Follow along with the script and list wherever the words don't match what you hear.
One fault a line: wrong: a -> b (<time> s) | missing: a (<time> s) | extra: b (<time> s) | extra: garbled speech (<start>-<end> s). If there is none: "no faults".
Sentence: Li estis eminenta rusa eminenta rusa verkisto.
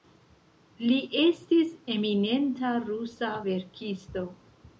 missing: eminenta rusa (3.3 s)